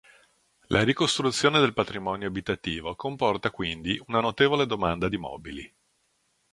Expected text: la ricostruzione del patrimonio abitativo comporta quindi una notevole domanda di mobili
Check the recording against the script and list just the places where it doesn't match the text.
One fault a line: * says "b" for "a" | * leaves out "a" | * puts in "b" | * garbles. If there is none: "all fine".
all fine